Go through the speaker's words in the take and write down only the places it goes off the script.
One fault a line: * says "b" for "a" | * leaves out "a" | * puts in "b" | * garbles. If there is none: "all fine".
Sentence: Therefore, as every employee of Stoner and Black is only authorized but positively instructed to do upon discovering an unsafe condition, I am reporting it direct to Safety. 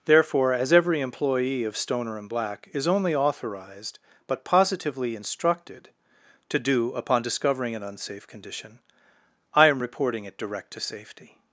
all fine